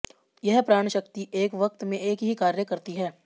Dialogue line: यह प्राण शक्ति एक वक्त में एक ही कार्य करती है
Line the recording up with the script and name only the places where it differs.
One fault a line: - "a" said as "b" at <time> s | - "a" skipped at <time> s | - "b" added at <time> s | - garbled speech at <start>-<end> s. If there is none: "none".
none